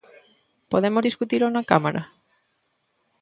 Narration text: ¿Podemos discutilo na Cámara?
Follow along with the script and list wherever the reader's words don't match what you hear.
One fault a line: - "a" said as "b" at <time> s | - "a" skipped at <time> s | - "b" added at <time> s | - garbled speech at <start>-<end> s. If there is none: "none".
none